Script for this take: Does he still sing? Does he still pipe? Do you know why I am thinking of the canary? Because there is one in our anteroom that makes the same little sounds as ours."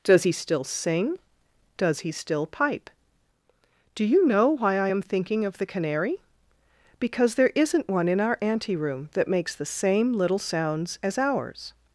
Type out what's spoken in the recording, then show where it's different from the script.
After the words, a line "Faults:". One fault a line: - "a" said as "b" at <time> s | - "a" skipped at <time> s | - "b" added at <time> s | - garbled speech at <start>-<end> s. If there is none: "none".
Does he still sing? Does he still pipe? Do you know why I am thinking of the canary? Because there isn't one in our anteroom that makes the same little sounds as ours."
Faults:
- "is" said as "isn't" at 7.5 s